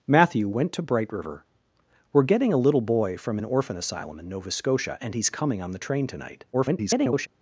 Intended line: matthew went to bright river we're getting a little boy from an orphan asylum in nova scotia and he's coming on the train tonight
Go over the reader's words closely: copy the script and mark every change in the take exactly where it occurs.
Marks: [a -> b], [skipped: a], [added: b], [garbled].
matthew went to bright river we're getting a little boy from an orphan asylum in nova scotia and he's coming on the train tonight [garbled]